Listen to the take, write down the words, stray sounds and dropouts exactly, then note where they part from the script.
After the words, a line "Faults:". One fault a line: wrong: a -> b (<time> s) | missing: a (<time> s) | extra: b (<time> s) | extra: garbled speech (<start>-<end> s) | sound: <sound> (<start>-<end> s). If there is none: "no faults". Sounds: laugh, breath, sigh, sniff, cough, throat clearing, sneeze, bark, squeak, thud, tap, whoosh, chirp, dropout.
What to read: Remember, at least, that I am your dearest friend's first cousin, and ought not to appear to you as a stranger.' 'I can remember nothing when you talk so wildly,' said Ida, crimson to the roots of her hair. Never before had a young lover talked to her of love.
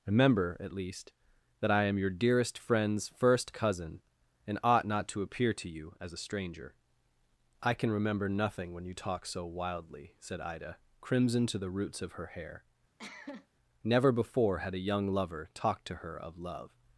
Remember, at least, that I am your dearest friend's first cousin, and ought not to appear to you as a stranger.' 'I can remember nothing when you talk so wildly,' said Ida, crimson to the roots of her hair. Never before had a young lover talked to her of love.
Faults:
sound: cough (13.0-13.5 s)